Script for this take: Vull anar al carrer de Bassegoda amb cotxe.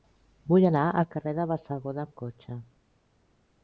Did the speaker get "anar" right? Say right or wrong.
right